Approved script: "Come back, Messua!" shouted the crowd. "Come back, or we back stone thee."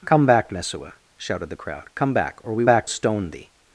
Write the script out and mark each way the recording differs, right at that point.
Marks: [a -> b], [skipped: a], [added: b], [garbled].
"Come back, Messua!" shouted the crowd. "Come back, or we back stone thee."